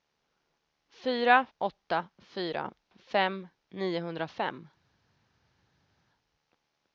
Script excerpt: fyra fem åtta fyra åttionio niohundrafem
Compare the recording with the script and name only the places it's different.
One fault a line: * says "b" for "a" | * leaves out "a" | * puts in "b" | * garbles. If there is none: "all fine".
* leaves out "fem"
* says "fem" for "åttionio"